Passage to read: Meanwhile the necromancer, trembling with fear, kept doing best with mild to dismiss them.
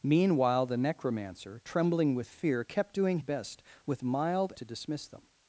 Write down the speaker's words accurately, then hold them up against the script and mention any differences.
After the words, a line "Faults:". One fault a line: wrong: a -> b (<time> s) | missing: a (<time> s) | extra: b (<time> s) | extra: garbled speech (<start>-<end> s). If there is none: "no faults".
Meanwhile the necromancer, trembling with fear, kept doing best with mild to dismiss them.
Faults:
no faults